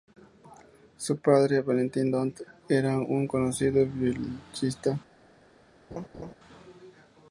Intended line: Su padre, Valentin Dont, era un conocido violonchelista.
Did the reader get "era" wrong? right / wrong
right